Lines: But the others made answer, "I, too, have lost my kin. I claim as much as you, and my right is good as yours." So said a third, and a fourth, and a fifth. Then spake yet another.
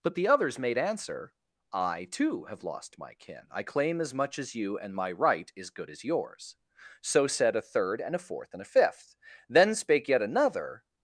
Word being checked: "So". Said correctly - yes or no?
yes